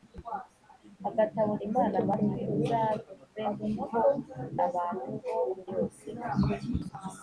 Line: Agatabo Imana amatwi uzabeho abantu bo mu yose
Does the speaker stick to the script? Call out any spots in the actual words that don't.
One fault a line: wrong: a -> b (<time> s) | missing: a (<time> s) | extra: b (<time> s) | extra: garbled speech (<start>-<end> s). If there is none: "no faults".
no faults